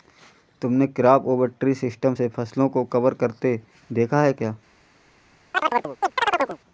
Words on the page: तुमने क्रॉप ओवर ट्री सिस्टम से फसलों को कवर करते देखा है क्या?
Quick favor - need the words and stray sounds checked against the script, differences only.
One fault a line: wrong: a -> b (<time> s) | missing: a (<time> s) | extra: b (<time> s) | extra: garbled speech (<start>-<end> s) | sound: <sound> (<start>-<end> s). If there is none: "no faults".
sound: chirp (5.5-6.6 s)